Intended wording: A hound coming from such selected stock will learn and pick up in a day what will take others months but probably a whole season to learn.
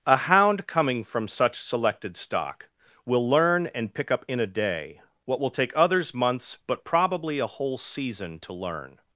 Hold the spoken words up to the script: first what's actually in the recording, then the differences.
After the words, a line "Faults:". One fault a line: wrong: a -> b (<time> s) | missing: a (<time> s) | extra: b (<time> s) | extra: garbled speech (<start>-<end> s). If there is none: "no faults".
A hound coming from such selected stock will learn and pick up in a day what will take others months but probably a whole season to learn.
Faults:
no faults